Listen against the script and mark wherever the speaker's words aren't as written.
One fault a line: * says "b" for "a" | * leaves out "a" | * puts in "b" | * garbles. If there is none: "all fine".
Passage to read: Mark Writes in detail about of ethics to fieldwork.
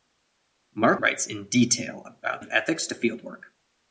all fine